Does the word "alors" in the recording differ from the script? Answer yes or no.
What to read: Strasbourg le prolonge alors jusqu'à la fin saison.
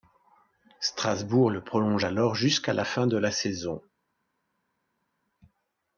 no